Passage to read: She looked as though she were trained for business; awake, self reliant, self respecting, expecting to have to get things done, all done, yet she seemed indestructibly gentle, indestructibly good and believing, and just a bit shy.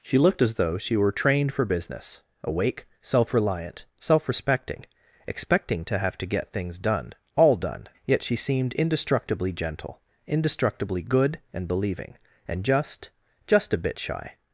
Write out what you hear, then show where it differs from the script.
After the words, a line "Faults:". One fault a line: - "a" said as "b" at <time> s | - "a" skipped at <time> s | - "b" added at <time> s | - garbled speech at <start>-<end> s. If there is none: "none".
She looked as though she were trained for business; awake, self reliant, self respecting, expecting to have to get things done, all done, yet she seemed indestructibly gentle, indestructibly good and believing, and just just a bit shy.
Faults:
- "just" added at 13.5 s